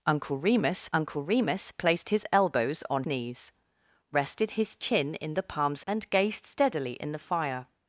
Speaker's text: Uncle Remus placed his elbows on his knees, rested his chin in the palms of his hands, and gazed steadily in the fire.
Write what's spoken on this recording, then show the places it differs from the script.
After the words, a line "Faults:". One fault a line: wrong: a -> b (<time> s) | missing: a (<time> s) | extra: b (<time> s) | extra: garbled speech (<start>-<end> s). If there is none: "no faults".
Uncle Remus uncle Remus placed his elbows on knees, rested his chin in the palms and gazed steadily in the fire.
Faults:
extra: uncle Remus (0.9 s)
missing: his (3.0 s)
missing: of his hands (5.8 s)